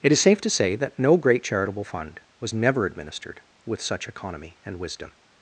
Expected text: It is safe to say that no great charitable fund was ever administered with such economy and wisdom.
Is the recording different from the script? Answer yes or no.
yes